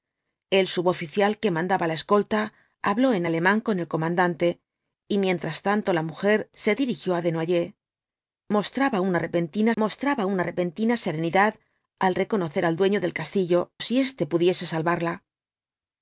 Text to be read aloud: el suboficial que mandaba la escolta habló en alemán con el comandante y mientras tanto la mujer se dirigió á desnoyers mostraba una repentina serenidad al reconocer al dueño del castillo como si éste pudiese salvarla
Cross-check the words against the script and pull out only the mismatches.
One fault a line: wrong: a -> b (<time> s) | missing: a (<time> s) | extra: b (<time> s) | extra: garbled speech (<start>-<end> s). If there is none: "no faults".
extra: mostraba una repentina (9.8 s)
missing: como (13.7 s)